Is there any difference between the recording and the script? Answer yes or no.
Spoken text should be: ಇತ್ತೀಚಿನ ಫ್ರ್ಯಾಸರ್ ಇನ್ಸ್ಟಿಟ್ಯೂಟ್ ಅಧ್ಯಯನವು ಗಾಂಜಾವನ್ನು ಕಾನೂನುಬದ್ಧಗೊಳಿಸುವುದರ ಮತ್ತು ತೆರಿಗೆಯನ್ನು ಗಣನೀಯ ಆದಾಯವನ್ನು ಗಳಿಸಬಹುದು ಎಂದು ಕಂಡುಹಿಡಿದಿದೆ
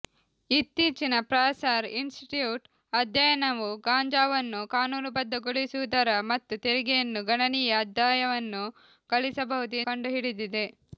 yes